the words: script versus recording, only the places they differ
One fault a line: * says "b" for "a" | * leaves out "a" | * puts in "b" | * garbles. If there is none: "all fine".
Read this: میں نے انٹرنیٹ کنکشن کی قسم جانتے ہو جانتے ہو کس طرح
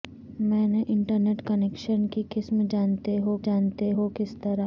all fine